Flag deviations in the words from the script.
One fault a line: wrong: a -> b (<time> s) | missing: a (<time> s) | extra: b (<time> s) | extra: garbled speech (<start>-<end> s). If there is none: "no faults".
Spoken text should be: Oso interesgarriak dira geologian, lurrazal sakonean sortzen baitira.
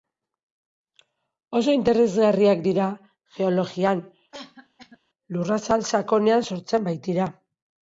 no faults